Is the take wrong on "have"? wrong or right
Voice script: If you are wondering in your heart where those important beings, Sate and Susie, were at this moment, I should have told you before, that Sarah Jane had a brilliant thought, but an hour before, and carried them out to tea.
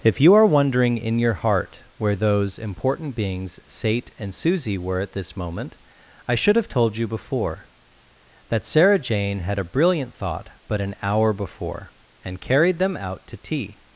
right